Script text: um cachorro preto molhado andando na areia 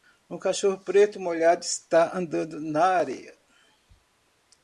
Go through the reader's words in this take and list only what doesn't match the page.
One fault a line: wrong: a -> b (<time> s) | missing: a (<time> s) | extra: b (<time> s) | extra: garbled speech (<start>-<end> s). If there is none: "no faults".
extra: está (1.6 s)